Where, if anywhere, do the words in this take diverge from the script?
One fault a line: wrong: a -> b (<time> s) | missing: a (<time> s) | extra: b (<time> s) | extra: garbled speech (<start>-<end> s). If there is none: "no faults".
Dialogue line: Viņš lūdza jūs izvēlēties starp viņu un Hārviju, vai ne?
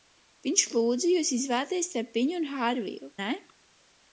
missing: vai (3.1 s)